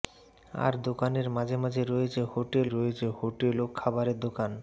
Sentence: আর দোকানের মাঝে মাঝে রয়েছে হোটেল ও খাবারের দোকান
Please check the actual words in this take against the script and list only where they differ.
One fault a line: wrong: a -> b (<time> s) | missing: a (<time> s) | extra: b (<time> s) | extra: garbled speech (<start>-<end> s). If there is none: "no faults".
extra: রয়েছে হোটেল (2.7 s)